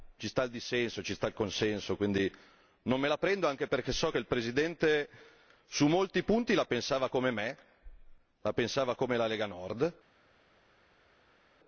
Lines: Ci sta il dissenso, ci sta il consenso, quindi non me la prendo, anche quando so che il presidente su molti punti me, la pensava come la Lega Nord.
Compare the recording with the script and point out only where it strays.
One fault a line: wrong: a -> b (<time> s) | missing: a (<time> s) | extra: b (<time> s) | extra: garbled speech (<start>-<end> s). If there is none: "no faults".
wrong: quando -> perché (3.7 s)
extra: la pensava come (6.5 s)